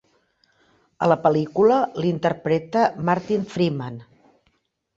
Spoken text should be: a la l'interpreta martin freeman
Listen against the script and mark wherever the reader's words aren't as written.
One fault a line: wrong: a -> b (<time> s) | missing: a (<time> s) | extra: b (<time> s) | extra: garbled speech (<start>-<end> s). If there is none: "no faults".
extra: pel·lícula (1.3 s)